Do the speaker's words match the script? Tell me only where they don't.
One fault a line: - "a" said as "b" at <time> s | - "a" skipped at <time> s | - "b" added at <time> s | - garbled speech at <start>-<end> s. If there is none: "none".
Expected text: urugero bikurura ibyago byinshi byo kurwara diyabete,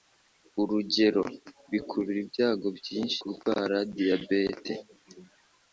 - "byo" skipped at 3.2 s